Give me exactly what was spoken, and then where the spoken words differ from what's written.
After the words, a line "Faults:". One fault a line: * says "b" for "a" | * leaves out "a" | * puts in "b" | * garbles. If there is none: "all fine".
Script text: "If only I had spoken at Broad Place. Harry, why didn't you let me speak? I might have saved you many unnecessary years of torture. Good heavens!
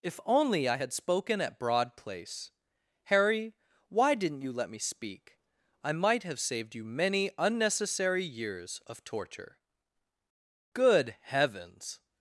"If only I had spoken at Broad Place. Harry, why didn't you let me speak? I might have saved you many unnecessary years of torture. Good heavens!
Faults:
all fine